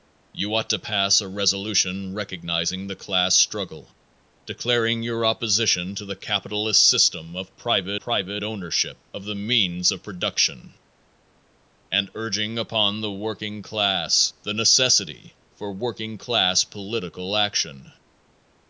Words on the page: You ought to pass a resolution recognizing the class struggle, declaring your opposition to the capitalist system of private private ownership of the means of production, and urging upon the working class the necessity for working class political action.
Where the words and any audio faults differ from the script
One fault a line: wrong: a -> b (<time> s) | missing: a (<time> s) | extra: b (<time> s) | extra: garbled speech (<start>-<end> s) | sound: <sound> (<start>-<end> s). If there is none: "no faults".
no faults